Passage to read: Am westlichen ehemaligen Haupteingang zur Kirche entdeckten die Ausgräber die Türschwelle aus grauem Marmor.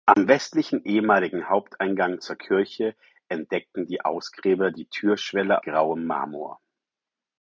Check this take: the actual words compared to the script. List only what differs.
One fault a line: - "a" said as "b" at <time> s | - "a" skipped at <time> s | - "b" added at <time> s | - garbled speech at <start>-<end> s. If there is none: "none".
- "aus" skipped at 5.6 s